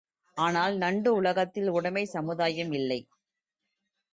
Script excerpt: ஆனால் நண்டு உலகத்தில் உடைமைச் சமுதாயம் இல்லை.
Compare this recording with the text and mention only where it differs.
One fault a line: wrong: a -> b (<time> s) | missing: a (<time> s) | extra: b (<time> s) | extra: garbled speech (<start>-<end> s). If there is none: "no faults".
no faults